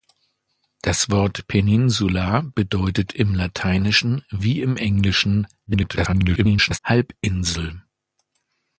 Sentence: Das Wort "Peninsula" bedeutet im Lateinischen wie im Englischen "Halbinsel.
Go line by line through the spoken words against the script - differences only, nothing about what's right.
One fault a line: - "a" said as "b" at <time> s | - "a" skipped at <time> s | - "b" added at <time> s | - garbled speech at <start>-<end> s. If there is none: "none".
- garbled speech at 5.7-6.8 s